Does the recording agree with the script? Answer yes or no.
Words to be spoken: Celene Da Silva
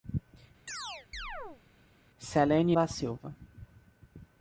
yes